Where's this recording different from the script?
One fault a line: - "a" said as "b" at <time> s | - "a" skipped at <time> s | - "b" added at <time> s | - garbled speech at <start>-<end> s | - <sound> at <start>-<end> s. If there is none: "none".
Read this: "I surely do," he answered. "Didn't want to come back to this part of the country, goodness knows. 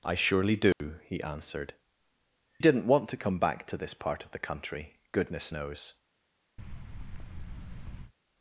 - dropout at 0.7-0.8 s
- thud at 6.6-8.1 s